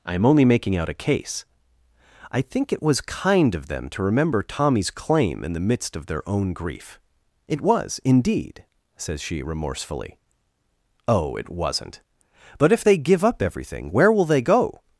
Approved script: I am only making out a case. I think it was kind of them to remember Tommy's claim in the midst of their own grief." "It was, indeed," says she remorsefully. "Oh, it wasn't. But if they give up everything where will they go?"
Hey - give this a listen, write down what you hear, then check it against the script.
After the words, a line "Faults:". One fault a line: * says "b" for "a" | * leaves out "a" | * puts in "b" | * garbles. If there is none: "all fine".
I am only making out a case. I think it was kind of them to remember Tommy's claim in the midst of their own grief." "It was, indeed," says she remorsefully. "Oh, it wasn't. But if they give up everything where will they go?"
Faults:
all fine